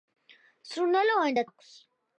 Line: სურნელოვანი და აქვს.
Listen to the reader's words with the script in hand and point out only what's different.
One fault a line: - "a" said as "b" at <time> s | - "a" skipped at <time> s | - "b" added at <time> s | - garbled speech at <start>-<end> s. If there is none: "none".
none